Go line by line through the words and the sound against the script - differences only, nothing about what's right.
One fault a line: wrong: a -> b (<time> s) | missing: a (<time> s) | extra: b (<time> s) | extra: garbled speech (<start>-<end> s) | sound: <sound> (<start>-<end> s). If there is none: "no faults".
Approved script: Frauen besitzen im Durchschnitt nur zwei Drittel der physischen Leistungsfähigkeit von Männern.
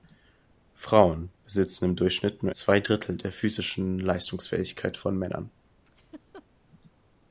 sound: laugh (5.8-6.5 s)